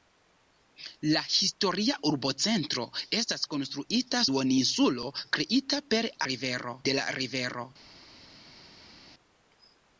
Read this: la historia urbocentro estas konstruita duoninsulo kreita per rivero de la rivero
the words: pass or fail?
pass